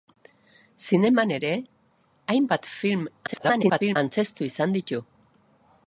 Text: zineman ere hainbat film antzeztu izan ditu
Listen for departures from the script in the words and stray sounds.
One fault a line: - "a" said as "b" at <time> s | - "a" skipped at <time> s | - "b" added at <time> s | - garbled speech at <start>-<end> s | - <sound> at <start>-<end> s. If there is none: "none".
- garbled speech at 3.3-4.0 s